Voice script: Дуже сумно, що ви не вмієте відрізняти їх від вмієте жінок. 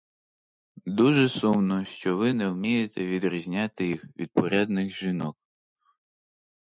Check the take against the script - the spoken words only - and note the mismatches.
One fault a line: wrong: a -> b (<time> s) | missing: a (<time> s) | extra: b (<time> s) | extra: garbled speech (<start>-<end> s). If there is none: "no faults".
wrong: вмієте -> порядних (4.3 s)